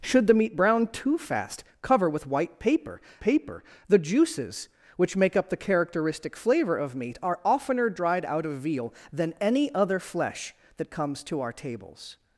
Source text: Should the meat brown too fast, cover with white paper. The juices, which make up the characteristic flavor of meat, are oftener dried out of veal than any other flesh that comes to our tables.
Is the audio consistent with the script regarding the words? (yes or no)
no